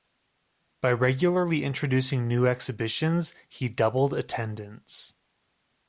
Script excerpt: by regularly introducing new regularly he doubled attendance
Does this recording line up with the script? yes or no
no